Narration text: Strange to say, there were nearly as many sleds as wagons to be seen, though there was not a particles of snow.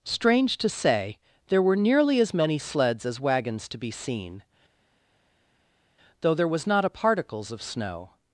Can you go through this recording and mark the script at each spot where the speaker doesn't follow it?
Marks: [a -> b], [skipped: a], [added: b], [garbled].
Strange to say, there were nearly as many sleds as wagons to be seen, though there was not a particles of snow.